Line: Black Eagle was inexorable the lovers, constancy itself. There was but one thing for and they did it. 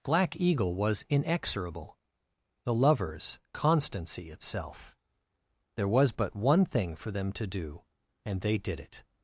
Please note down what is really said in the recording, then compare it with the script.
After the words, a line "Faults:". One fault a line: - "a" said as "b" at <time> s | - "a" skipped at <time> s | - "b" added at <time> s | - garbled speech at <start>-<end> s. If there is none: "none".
Black Eagle was inexorable the lovers, constancy itself. There was but one thing for them to do, and they did it.
Faults:
- "them to do" added at 7.1 s